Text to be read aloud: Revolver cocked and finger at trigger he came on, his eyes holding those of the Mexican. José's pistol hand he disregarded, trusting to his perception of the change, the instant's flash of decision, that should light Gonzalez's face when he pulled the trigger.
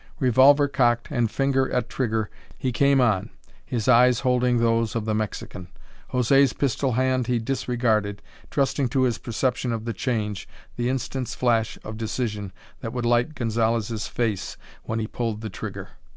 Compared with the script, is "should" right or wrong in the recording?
wrong